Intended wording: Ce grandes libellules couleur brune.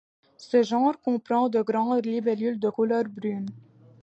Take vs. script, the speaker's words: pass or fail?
fail